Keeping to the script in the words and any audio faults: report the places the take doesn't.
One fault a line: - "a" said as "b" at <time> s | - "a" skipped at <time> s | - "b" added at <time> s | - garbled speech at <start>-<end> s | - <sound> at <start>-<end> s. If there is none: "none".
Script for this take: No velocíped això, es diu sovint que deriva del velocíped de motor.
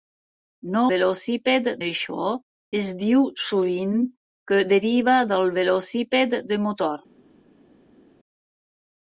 none